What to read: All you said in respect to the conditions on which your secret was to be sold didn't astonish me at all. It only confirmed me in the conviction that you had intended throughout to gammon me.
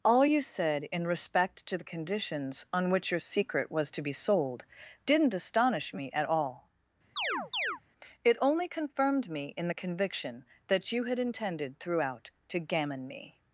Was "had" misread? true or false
false